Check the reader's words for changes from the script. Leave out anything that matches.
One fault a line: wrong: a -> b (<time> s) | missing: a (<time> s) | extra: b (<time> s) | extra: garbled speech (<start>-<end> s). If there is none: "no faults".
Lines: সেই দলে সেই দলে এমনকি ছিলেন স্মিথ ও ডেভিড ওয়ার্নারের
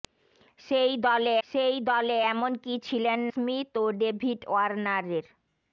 no faults